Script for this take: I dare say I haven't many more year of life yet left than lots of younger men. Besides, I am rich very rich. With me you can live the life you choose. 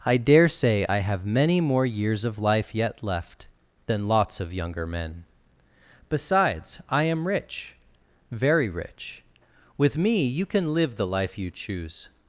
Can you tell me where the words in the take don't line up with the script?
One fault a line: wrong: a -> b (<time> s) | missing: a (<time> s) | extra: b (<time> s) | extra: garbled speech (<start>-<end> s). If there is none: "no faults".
wrong: haven't -> have (1.0 s)
wrong: year -> years (1.9 s)